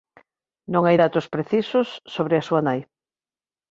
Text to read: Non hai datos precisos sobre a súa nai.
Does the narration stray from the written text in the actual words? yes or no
no